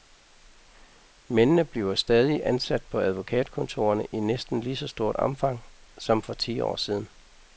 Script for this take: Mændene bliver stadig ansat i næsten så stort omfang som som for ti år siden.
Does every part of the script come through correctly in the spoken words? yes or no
no